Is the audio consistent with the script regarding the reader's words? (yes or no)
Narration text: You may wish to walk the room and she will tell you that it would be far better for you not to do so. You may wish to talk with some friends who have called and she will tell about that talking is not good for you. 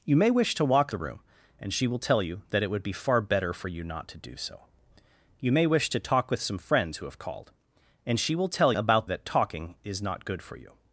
yes